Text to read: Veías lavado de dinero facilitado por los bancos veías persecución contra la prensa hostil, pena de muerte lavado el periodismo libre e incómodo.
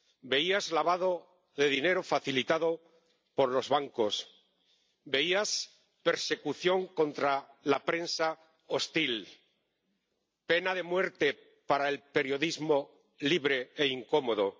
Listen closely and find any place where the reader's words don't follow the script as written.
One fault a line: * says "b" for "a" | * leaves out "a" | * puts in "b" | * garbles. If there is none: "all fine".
* says "para" for "lavado"